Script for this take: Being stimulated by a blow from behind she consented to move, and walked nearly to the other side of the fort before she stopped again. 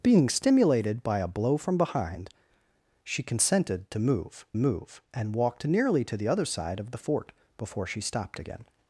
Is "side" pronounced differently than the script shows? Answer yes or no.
no